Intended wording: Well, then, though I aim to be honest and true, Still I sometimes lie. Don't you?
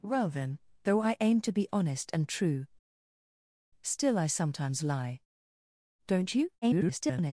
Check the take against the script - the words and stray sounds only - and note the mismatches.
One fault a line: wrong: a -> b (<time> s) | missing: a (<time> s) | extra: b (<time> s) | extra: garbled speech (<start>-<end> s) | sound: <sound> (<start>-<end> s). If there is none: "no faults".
extra: garbled speech (6.6-7.3 s)